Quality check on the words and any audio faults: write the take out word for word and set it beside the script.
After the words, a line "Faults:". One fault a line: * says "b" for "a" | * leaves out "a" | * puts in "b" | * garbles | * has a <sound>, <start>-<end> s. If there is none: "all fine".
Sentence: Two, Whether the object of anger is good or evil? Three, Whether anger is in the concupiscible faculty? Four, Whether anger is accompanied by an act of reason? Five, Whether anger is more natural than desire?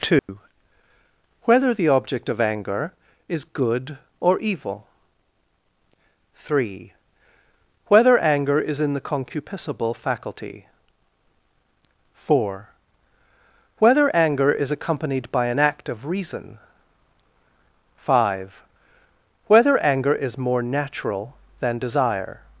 Two, Whether the object of anger is good or evil? Three, Whether anger is in the concupiscible faculty? Four, Whether anger is accompanied by an act of reason? Five, Whether anger is more natural than desire?
Faults:
* has a dropout, 0.2-0.3 s